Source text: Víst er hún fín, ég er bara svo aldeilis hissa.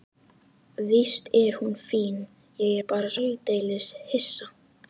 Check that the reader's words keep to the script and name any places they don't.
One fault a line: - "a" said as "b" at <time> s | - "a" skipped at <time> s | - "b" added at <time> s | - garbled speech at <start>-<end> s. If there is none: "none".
- "svo" skipped at 3.1 s